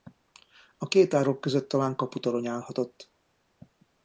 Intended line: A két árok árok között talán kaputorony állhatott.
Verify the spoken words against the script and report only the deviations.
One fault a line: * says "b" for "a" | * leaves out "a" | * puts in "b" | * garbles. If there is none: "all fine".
* leaves out "árok"